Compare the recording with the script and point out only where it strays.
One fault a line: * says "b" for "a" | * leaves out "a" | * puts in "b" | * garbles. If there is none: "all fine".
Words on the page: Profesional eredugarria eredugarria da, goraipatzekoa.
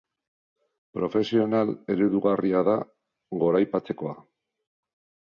* leaves out "eredugarria"